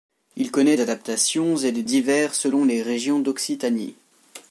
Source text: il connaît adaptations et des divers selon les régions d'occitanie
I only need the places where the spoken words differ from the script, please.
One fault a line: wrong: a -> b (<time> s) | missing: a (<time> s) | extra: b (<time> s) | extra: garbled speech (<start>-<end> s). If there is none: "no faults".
no faults